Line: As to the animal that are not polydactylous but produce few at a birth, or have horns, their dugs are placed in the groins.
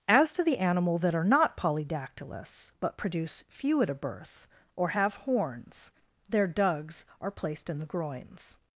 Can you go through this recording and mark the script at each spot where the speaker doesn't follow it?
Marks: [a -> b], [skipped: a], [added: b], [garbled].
As to the animal that are not polydactylous but produce few at a birth, or have horns, their dugs are placed in the groins.